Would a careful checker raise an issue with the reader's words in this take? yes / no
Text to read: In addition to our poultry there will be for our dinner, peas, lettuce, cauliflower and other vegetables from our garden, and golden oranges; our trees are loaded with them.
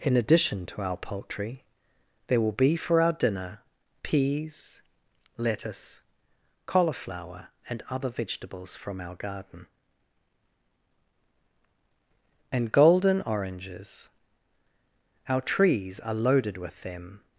no